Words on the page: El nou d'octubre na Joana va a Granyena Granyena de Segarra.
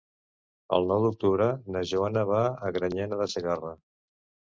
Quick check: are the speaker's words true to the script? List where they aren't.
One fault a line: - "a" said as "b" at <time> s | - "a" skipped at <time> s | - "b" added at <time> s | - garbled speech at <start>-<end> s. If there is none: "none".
- "Granyena" skipped at 3.2 s